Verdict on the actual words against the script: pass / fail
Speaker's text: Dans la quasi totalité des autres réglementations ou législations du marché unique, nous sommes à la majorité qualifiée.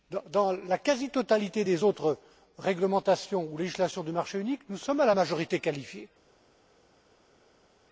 pass